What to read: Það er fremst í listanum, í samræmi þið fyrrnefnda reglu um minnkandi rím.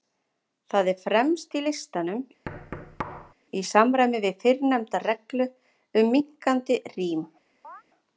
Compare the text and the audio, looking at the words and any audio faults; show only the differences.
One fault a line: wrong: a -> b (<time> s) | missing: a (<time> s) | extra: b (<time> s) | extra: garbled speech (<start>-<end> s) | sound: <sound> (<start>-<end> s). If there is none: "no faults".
sound: thud (2.5-3.3 s)
wrong: þið -> við (4.3 s)
sound: chirp (7.6-7.8 s)